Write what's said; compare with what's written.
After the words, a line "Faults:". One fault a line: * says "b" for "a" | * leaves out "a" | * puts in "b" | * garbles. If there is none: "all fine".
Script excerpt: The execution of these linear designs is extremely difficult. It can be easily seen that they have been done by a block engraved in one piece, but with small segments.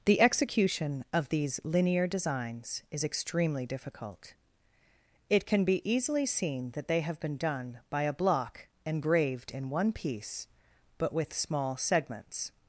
The execution of these linear designs is extremely difficult. It can be easily seen that they have been done by a block engraved in one piece, but with small segments.
Faults:
all fine